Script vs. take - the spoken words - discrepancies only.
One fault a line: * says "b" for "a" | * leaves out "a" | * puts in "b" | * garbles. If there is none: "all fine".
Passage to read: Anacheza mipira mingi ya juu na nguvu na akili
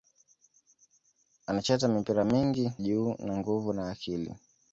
* leaves out "ya"